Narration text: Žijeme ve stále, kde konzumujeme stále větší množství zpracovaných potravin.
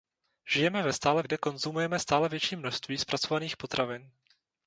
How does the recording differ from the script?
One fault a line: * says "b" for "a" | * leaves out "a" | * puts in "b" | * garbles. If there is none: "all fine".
all fine